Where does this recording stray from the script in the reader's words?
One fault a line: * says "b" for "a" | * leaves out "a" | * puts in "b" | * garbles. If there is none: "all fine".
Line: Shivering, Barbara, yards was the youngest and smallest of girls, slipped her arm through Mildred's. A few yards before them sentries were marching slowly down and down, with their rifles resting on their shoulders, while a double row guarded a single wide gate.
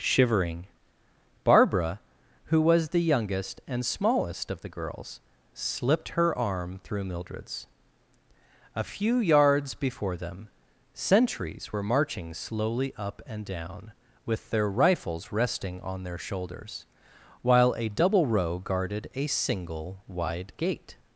* says "who" for "yards"
* puts in "the"
* says "up" for "down"